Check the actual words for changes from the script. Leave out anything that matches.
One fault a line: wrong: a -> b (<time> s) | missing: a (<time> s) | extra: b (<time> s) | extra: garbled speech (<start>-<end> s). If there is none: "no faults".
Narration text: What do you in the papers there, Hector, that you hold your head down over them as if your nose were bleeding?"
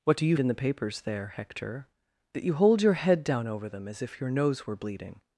no faults